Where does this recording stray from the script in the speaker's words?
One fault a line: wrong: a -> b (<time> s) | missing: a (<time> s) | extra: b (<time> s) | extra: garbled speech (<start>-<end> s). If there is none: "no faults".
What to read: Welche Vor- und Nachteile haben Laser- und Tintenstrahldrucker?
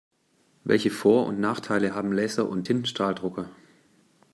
no faults